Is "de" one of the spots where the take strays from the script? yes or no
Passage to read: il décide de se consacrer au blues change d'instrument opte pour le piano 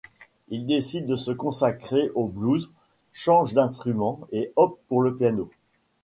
no